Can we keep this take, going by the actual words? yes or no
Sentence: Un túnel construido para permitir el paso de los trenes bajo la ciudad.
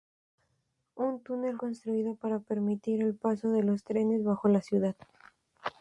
yes